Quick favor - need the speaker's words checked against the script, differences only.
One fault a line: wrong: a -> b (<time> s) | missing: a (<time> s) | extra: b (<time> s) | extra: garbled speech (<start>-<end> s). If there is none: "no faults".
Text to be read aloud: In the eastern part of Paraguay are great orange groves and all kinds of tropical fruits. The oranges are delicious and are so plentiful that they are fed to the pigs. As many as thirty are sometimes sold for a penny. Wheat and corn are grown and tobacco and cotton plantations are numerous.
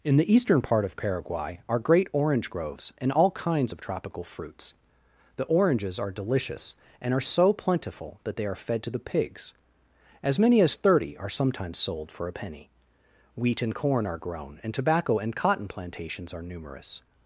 no faults